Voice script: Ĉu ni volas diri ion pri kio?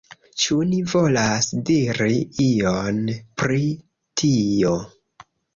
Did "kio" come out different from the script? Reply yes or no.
yes